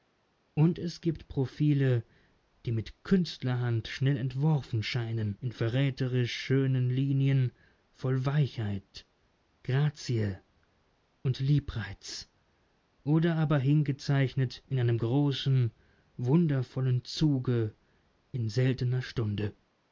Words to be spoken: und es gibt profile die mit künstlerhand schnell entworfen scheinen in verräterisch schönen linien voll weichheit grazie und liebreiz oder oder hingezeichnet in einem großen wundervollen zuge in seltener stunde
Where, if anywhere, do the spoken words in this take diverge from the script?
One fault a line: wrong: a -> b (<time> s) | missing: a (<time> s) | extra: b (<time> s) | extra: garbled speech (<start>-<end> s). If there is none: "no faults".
wrong: oder -> aber (13.3 s)